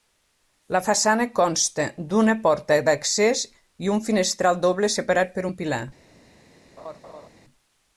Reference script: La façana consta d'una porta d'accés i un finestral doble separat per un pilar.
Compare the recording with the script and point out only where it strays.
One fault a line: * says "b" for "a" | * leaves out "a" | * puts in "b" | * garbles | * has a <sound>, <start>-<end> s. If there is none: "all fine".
* has a laugh, 6.8-7.3 s